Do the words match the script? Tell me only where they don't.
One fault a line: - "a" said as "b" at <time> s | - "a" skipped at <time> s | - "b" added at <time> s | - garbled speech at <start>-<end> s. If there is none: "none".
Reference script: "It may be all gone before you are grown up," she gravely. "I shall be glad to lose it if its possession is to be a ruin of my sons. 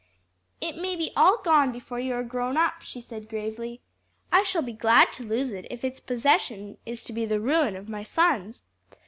- "said" added at 3.0 s
- "a" said as "the" at 7.3 s